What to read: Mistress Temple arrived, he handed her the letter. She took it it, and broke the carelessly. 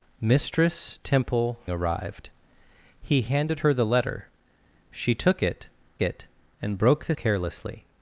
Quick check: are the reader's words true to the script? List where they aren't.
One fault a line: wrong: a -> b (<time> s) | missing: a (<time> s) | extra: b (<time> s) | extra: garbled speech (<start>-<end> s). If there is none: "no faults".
no faults